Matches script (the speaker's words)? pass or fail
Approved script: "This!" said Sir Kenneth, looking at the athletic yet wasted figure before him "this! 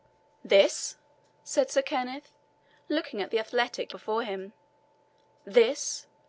fail